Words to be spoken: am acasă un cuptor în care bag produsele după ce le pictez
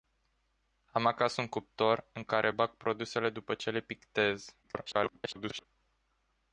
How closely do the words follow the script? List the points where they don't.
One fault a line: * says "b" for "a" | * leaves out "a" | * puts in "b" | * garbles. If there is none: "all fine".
* garbles